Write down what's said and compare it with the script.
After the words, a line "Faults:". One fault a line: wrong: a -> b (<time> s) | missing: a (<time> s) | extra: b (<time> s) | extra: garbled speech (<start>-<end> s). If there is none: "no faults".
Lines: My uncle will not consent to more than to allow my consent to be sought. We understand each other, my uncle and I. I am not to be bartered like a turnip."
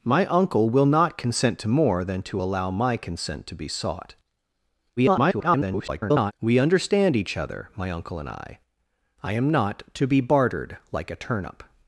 My uncle will not consent to more than to allow my consent to be sought. [garbled] We understand each other, my uncle and I. I am not to be bartered like a turnip."
Faults:
extra: garbled speech (5.0-6.3 s)